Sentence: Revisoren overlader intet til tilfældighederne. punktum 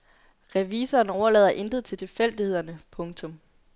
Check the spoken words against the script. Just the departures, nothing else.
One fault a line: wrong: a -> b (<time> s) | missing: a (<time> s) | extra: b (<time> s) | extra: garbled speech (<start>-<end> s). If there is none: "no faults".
no faults